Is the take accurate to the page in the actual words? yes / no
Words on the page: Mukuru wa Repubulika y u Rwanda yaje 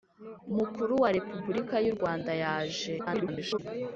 no